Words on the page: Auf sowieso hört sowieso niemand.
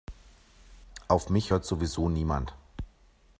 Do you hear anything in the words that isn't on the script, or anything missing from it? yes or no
yes